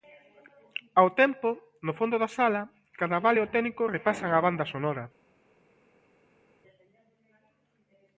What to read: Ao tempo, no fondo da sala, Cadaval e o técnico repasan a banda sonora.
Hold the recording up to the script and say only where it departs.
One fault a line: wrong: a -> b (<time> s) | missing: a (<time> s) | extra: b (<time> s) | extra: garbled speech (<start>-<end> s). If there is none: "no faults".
no faults